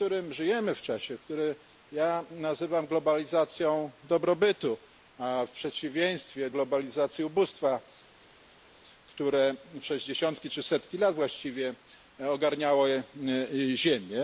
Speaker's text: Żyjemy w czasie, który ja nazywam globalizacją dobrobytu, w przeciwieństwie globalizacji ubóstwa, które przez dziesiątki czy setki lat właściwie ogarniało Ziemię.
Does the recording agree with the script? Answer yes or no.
yes